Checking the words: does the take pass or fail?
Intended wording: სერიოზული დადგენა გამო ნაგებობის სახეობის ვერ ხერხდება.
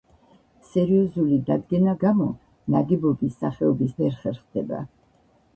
pass